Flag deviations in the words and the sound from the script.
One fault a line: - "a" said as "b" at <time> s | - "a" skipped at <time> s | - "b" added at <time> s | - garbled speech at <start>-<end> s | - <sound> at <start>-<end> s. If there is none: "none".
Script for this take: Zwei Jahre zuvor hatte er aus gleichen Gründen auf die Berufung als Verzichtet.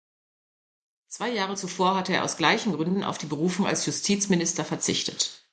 - "Justizminister" added at 3.9 s